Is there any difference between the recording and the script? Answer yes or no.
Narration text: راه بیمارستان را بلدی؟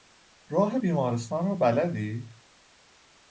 no